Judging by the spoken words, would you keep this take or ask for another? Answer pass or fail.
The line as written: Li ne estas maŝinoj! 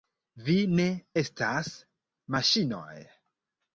fail